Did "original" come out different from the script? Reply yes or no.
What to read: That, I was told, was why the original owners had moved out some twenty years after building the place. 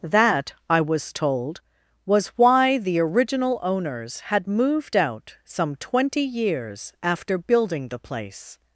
no